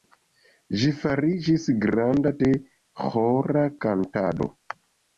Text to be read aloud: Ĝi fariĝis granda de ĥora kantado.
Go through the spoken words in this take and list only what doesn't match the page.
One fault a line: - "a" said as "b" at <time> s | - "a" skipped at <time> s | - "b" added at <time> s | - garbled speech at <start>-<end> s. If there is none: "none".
none